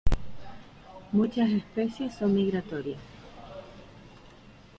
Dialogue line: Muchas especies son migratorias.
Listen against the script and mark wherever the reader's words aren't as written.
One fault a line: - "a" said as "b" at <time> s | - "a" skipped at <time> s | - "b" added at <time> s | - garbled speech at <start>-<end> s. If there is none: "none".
none